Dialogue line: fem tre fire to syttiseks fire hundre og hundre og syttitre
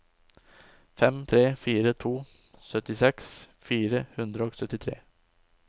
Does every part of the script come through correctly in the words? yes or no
no